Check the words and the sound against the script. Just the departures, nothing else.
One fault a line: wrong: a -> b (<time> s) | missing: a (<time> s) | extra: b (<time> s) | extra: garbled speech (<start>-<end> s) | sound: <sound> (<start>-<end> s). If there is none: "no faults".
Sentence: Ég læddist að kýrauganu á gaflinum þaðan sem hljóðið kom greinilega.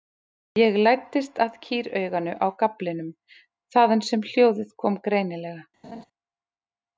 sound: laugh (5.8-6.1 s)